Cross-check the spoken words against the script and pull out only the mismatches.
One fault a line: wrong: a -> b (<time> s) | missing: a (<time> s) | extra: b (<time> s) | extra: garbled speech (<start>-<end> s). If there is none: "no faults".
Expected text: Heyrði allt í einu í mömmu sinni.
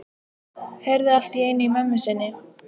no faults